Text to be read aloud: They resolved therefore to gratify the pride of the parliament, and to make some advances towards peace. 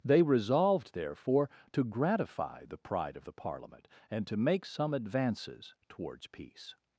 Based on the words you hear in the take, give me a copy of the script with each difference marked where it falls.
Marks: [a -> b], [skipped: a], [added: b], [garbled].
They resolved therefore to gratify the pride of the parliament, and to make some advances towards peace.